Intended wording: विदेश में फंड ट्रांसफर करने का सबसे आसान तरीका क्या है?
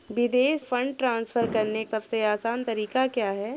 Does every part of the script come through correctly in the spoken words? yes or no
no